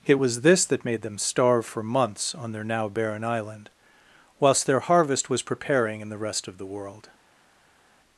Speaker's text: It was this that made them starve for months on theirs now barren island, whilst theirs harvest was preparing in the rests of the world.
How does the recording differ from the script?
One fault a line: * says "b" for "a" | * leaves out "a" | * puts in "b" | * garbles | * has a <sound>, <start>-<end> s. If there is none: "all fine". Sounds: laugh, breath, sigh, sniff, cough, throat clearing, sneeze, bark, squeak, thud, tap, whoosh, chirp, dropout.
* says "their" for "theirs"
* says "their" for "theirs"
* says "rest" for "rests"